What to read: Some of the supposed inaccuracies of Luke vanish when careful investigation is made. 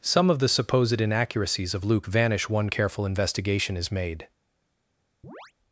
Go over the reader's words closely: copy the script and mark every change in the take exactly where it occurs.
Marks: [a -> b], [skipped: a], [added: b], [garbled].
Some of the supposed inaccuracies of Luke vanish [when -> one] careful investigation is made.